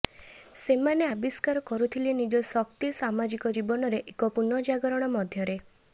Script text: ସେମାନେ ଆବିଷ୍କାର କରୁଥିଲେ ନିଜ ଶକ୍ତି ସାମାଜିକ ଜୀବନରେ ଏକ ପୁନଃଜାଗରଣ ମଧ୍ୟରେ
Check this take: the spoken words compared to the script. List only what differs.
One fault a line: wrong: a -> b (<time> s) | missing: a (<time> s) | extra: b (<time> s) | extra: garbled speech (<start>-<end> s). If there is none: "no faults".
no faults